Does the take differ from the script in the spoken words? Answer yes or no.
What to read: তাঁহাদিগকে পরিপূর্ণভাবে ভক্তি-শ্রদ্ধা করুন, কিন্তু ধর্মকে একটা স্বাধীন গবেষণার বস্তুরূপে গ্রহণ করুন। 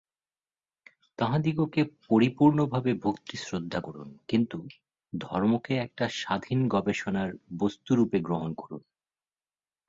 no